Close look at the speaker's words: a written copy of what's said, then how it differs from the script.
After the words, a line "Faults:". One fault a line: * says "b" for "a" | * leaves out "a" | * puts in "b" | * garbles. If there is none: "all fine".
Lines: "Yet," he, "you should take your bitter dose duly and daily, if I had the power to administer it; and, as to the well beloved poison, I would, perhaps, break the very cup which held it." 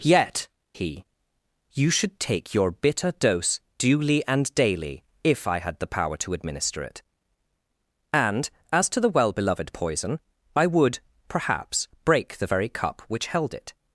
"Yet," he, "you should take your bitter dose duly and daily, if I had the power to administer it; and, as to the well beloved poison, I would, perhaps, break the very cup which held it."
Faults:
all fine